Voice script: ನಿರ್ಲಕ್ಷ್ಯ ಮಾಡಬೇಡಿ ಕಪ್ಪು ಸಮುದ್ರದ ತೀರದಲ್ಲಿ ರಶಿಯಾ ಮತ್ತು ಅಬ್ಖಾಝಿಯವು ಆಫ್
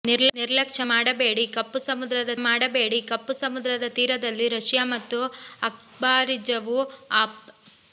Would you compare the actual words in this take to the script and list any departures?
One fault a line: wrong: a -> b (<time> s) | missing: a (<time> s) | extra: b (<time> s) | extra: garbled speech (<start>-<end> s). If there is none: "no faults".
extra: ಮಾಡಬೇಡಿ ಕಪ್ಪು ಸಮುದ್ರದ (2.4 s)